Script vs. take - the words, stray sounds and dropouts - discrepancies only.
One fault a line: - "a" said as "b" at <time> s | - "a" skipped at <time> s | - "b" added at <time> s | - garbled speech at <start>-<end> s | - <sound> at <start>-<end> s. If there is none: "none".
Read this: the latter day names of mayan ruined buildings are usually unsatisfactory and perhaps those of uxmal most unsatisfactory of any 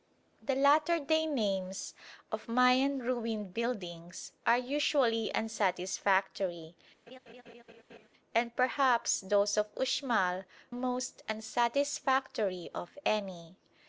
- laugh at 7.1-8.1 s